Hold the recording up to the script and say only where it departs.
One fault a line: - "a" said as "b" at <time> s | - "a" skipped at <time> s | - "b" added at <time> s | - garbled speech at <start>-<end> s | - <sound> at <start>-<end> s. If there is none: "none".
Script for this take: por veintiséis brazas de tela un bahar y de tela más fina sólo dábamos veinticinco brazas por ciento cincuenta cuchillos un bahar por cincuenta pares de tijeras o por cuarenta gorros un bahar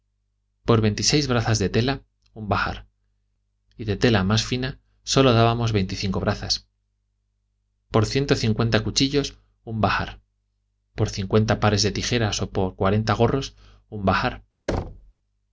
- thud at 14.7-15.1 s